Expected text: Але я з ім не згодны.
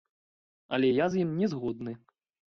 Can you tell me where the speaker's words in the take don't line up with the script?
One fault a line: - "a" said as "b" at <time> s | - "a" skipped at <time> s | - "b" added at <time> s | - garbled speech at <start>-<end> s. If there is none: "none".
none